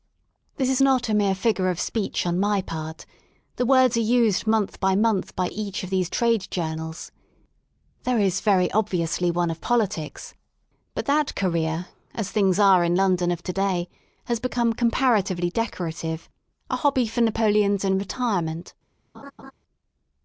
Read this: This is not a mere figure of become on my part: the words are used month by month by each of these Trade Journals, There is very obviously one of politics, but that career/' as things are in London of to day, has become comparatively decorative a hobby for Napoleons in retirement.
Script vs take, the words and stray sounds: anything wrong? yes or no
yes